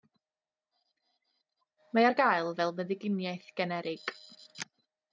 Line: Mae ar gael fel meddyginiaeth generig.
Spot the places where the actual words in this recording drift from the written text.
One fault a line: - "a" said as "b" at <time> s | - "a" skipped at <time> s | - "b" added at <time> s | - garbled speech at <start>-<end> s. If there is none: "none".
none